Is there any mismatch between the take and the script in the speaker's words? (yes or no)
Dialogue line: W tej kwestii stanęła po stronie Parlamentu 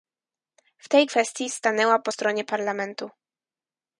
no